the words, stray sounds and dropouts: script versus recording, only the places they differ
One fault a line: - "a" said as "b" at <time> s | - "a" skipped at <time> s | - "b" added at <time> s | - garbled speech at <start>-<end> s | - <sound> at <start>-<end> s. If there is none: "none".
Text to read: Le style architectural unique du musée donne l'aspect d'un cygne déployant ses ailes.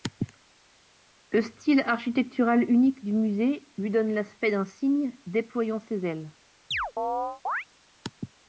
- "lui" added at 3.8 s
- chirp at 6.7-7.7 s